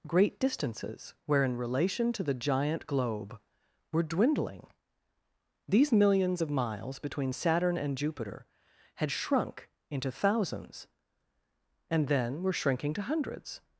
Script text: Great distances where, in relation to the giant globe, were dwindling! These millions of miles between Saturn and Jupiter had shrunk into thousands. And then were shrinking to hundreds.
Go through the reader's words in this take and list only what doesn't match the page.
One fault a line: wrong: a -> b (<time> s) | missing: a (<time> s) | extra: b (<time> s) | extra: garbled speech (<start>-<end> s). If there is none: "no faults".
no faults